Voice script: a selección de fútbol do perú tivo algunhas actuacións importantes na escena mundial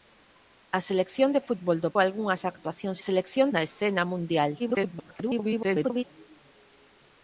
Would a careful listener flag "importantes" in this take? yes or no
yes